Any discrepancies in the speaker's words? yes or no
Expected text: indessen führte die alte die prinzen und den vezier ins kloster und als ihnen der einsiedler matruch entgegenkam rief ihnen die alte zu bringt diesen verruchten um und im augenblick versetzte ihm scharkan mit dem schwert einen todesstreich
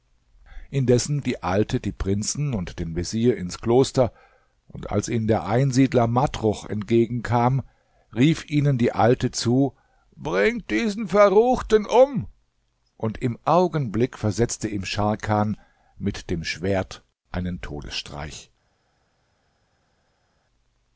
yes